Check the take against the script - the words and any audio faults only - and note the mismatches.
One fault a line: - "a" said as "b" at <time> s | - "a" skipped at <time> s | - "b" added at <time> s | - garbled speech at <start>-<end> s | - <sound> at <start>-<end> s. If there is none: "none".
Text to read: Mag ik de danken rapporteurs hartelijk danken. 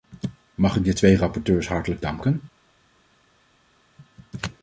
- "danken" said as "twee" at 0.9 s